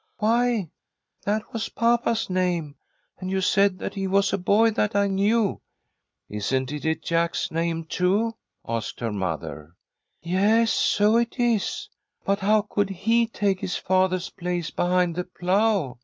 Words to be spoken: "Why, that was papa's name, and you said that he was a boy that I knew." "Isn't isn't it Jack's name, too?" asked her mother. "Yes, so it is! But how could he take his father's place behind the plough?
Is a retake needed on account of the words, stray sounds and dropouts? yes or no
yes